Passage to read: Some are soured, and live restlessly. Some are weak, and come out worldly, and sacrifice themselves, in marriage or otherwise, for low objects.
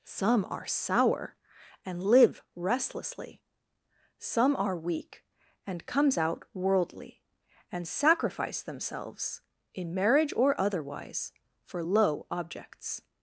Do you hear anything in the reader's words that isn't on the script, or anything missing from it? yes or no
yes